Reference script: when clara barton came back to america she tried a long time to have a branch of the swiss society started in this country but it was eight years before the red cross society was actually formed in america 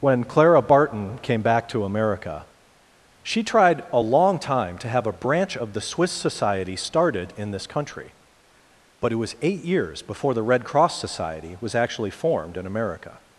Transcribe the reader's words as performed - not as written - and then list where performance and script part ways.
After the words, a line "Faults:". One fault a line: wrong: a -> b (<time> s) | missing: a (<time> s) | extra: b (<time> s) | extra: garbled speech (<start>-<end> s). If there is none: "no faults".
when clara barton came back to america she tried a long time to have a branch of the swiss society started in this country but it was eight years before the red cross society was actually formed in america
Faults:
no faults